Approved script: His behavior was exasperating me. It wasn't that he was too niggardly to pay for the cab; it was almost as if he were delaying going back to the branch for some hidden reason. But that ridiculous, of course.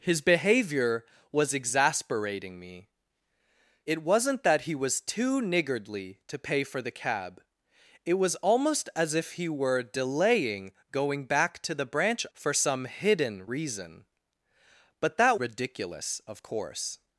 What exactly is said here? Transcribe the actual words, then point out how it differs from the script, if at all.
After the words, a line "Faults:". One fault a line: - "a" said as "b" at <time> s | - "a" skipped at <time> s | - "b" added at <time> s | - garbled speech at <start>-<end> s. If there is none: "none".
His behavior was exasperating me. It wasn't that he was too niggardly to pay for the cab; it was almost as if he were delaying going back to the branch for some hidden reason. But that ridiculous, of course.
Faults:
none